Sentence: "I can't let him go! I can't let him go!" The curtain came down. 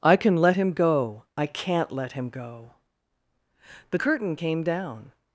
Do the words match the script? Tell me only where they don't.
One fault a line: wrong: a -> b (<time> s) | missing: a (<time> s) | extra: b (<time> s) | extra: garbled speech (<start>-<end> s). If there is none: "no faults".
wrong: can't -> can (0.2 s)